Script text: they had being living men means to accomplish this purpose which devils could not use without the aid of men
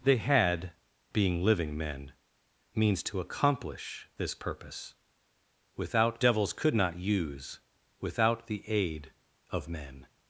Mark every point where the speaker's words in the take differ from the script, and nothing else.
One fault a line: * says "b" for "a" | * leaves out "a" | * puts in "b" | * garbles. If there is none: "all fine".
* says "without" for "which"